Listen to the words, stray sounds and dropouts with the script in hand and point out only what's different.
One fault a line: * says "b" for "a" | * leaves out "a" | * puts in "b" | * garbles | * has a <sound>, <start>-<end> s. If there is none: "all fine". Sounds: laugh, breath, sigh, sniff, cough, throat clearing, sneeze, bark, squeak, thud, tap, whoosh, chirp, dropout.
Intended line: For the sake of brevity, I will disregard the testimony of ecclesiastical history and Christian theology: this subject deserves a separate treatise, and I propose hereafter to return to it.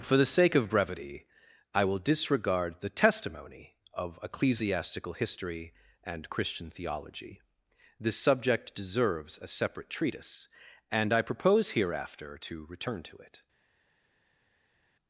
all fine